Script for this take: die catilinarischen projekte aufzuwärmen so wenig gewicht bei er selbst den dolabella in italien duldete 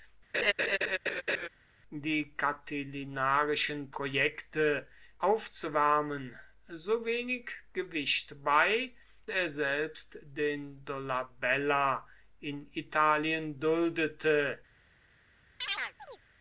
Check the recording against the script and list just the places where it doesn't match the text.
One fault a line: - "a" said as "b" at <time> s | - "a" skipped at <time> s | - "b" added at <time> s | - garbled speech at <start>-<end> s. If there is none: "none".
none